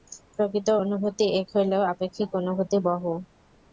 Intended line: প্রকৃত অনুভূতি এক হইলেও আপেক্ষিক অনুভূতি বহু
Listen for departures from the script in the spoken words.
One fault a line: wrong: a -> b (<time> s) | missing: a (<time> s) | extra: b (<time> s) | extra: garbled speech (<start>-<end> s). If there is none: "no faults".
no faults